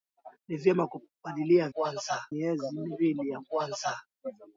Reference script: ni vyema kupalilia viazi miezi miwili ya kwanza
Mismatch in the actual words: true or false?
true